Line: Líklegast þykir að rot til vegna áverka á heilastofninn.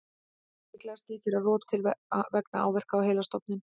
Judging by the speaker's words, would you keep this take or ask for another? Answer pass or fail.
pass